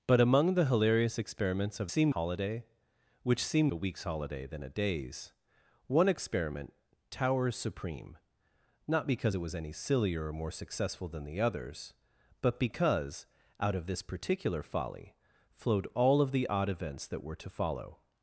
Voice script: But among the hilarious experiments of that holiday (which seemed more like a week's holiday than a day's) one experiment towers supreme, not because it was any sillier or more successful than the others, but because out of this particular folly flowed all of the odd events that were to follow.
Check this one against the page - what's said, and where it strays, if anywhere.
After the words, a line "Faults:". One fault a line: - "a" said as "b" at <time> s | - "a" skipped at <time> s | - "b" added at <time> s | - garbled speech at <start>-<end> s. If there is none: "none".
But among the hilarious experiments of seemed holiday (which seemed a week's holiday than a day's) one experiment towers supreme, not because it was any sillier or more successful than the others, but because out of this particular folly flowed all of the odd events that were to follow.
Faults:
- "that" said as "seemed" at 1.9 s
- "more like" skipped at 3.7 s